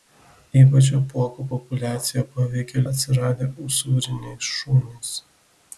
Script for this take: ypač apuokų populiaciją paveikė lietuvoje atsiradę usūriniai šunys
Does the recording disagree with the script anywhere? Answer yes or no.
yes